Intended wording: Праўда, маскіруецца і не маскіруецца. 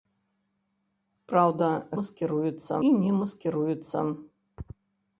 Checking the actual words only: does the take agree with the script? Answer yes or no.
yes